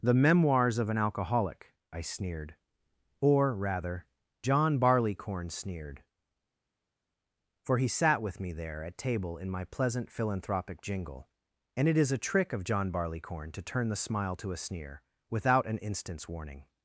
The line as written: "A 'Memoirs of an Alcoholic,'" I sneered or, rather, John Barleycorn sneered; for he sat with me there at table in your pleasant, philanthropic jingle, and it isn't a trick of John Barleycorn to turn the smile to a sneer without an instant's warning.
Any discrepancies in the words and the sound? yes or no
yes